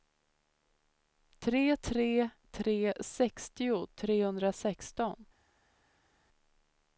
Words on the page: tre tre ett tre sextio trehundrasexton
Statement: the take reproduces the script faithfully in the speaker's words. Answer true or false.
false